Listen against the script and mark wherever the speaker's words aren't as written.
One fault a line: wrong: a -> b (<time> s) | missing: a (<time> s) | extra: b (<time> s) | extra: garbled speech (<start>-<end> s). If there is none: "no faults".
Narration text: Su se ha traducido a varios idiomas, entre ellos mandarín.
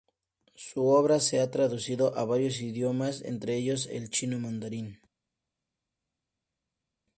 extra: obra (0.9 s)
extra: el chino (3.9 s)